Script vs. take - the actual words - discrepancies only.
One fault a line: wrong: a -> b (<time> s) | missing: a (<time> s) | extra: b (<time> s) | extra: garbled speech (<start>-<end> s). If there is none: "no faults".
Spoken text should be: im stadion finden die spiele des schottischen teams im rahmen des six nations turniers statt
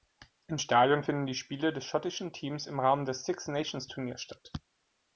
no faults